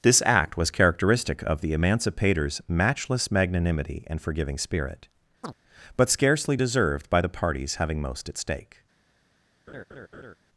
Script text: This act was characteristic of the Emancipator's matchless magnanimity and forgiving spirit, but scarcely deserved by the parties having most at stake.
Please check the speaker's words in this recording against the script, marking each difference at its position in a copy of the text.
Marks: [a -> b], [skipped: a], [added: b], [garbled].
This act was characteristic of the Emancipator's matchless magnanimity and forgiving spirit, but scarcely deserved by the parties having most at stake.